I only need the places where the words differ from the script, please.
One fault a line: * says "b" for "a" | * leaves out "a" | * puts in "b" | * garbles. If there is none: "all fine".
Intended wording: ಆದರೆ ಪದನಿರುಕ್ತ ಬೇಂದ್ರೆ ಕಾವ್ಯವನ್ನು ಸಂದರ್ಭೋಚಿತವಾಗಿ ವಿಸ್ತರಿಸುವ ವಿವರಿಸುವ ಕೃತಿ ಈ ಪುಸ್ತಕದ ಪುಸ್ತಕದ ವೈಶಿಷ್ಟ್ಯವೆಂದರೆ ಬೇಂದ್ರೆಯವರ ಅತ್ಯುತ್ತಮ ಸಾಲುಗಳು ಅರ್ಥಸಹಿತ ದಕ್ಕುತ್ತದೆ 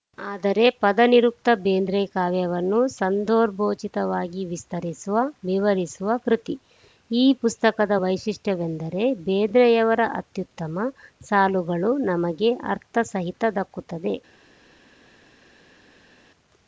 * leaves out "ಪುಸ್ತಕದ"
* puts in "ನಮಗೆ"